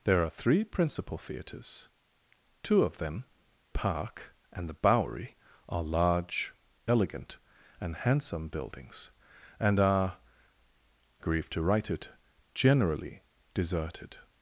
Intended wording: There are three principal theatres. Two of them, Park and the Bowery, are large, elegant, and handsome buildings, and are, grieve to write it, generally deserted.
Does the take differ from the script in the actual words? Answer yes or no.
no